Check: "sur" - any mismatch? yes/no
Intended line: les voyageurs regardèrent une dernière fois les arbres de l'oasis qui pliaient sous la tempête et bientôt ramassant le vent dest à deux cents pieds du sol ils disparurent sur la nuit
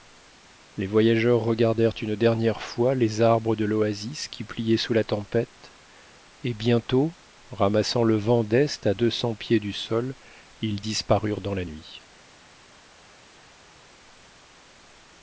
yes